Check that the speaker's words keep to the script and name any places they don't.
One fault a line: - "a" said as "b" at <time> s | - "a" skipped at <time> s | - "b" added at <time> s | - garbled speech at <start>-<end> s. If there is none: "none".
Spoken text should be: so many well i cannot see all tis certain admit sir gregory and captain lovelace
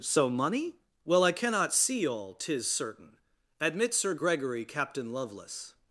- "many" said as "money" at 0.3 s
- "and" skipped at 4.6 s